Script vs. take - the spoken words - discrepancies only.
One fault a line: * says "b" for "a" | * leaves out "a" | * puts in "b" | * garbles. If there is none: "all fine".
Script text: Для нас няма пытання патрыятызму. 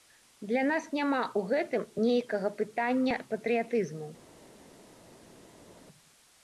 * puts in "ў гэтым нейкага"